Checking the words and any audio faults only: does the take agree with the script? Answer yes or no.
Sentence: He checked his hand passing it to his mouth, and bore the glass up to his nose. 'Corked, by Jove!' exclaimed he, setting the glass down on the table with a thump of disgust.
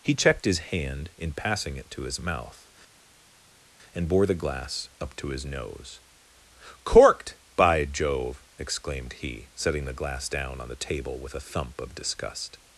no